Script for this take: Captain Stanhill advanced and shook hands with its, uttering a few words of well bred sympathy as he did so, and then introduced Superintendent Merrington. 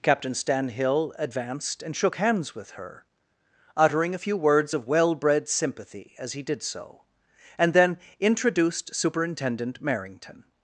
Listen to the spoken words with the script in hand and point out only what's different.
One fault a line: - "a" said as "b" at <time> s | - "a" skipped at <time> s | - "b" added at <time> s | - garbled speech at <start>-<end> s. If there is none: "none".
- "its" said as "her" at 2.7 s